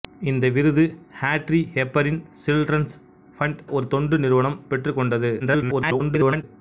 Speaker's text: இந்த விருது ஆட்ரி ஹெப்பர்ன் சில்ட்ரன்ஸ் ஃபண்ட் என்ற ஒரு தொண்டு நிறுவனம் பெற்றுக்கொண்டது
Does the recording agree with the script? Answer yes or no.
no